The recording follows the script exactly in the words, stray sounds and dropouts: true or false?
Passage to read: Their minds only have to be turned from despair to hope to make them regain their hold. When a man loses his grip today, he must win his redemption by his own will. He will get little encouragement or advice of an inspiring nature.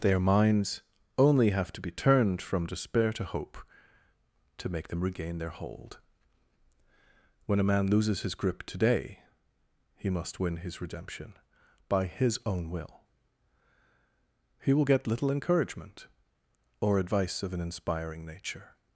true